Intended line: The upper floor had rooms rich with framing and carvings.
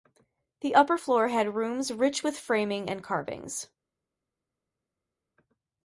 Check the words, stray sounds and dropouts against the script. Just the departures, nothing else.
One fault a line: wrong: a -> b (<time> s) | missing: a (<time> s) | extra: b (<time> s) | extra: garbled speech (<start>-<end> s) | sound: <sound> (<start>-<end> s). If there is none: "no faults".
no faults